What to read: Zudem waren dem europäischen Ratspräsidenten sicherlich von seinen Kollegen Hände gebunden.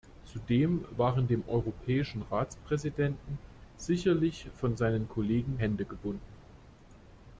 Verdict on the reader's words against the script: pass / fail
pass